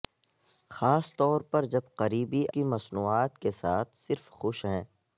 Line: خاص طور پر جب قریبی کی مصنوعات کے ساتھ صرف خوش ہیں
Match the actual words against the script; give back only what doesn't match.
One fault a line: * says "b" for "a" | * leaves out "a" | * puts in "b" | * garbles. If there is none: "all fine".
all fine